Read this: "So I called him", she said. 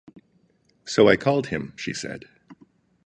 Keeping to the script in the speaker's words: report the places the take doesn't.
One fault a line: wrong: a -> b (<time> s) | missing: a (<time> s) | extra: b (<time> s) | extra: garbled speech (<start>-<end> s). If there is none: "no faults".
no faults